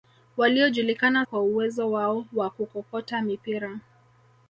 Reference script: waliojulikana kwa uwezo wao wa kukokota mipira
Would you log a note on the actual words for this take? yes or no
no